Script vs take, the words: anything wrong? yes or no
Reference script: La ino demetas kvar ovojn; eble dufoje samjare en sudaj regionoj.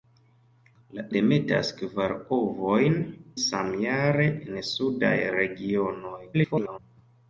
yes